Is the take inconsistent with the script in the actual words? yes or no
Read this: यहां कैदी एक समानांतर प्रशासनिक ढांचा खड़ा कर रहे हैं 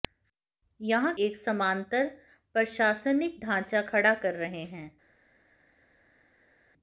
yes